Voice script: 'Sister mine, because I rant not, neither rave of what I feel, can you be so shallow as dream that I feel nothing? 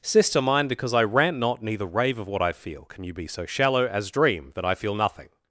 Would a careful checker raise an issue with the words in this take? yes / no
no